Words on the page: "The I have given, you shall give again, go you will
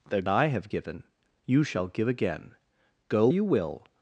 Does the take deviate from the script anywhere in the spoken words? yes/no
no